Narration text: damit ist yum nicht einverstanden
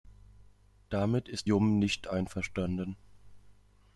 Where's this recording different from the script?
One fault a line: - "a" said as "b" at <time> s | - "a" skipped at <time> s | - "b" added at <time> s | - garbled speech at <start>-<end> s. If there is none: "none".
none